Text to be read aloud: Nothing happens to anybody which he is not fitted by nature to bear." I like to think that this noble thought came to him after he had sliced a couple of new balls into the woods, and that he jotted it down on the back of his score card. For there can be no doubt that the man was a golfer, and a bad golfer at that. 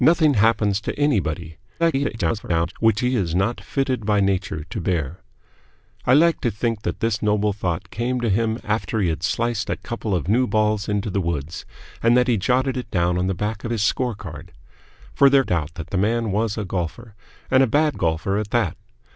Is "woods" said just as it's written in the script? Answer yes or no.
yes